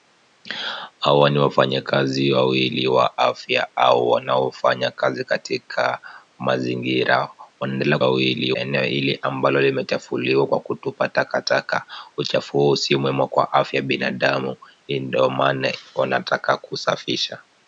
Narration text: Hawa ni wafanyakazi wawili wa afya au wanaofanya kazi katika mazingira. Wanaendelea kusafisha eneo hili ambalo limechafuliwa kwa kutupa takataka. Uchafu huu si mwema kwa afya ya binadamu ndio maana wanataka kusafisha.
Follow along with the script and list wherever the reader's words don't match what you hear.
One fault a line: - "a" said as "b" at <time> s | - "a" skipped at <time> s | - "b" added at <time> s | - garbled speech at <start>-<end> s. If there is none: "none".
- "kusafisha" said as "wawili" at 8.0 s